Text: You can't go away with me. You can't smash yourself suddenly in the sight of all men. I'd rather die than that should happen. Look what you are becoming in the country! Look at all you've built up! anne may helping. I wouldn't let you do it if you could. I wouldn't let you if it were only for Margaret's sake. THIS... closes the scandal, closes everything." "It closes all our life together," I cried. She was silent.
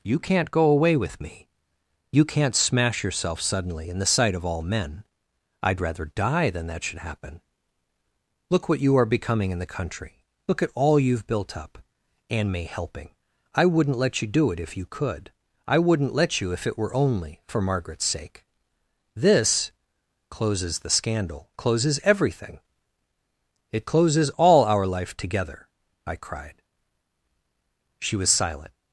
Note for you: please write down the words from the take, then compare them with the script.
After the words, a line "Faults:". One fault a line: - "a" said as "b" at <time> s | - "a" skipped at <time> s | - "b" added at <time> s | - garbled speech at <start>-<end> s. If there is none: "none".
You can't go away with me. You can't smash yourself suddenly in the sight of all men. I'd rather die than that should happen. Look what you are becoming in the country! Look at all you've built up! anne may helping. I wouldn't let you do it if you could. I wouldn't let you if it were only for Margaret's sake. THIS... closes the scandal, closes everything." "It closes all our life together," I cried. She was silent.
Faults:
none